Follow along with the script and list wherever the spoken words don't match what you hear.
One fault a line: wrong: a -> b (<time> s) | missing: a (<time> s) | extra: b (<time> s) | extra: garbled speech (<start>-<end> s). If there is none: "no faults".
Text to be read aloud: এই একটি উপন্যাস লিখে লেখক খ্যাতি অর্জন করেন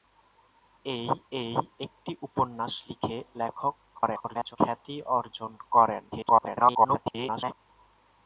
extra: এই (1.3 s)
extra: garbled speech (3.9-4.6 s)
extra: garbled speech (6.1-7.5 s)